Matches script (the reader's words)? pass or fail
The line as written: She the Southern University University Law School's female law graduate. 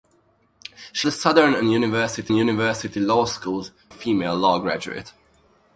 pass